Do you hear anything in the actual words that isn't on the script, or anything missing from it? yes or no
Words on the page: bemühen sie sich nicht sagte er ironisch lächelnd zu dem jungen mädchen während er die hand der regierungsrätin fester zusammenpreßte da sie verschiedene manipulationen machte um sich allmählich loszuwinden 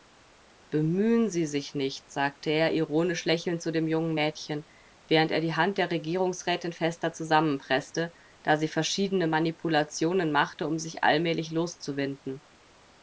no